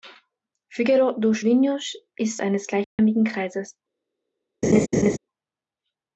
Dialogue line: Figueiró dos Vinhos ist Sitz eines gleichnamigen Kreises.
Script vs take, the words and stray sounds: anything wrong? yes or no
yes